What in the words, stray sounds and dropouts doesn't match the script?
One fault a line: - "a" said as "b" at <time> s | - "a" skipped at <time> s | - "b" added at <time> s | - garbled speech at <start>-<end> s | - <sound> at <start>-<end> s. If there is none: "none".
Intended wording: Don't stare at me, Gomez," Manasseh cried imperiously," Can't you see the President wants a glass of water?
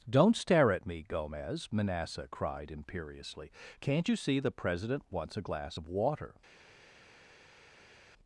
none